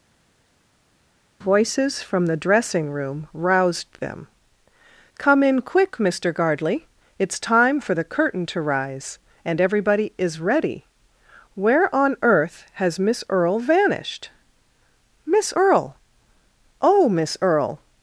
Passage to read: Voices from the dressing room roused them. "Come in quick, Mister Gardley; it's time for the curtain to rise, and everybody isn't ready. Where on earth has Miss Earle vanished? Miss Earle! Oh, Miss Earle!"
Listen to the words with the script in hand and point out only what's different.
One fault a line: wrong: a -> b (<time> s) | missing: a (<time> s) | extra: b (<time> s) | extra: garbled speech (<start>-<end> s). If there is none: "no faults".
wrong: isn't -> is (10.2 s)